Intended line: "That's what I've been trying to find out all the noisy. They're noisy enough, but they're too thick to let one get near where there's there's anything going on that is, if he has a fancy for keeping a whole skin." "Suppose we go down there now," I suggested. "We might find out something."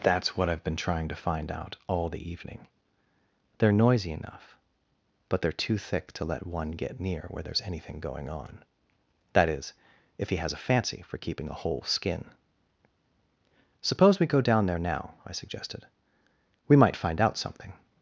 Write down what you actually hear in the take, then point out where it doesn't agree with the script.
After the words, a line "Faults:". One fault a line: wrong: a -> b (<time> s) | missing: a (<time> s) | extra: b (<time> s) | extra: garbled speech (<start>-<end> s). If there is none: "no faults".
"That's what I've been trying to find out all the evening. They're noisy enough, but they're too thick to let one get near where there's anything going on that is, if he has a fancy for keeping a whole skin." "Suppose we go down there now," I suggested. "We might find out something."
Faults:
wrong: noisy -> evening (2.3 s)
missing: there's (7.6 s)